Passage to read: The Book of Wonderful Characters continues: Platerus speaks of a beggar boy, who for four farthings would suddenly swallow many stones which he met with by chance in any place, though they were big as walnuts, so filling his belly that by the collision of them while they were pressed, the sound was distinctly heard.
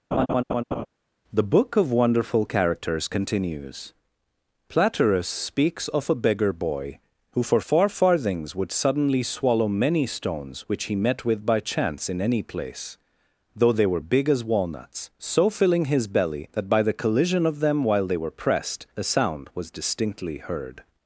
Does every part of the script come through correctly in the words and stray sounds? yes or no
no